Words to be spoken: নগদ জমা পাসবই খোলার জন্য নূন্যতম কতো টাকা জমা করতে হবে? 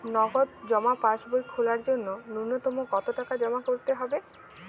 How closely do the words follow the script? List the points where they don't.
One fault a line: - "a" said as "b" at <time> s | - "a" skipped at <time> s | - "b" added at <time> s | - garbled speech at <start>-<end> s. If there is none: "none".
none